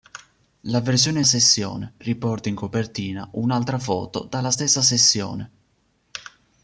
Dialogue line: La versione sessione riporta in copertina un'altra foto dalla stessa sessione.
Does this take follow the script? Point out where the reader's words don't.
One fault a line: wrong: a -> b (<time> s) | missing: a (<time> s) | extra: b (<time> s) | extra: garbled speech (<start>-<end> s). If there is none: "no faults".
no faults